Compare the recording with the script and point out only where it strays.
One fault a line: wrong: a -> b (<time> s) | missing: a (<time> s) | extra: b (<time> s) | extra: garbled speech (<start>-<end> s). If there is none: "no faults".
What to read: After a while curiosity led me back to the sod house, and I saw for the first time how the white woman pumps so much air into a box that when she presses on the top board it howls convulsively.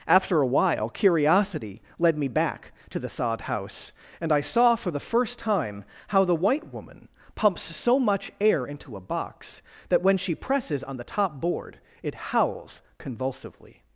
no faults